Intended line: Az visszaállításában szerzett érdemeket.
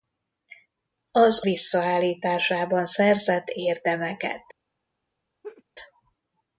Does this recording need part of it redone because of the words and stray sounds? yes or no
yes